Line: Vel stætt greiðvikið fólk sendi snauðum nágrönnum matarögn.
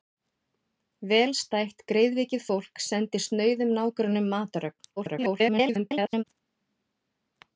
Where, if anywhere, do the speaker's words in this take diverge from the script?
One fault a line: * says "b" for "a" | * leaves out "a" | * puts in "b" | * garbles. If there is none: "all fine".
* garbles